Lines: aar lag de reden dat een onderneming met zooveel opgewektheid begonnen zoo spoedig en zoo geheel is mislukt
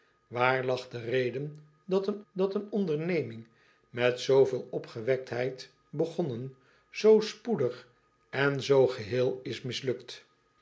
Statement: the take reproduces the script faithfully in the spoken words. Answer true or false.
false